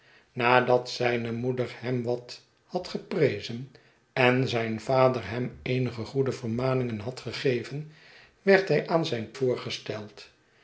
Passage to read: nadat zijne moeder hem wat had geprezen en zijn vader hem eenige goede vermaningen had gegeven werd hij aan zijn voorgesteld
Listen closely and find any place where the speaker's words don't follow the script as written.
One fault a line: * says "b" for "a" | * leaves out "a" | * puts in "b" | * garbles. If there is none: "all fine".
all fine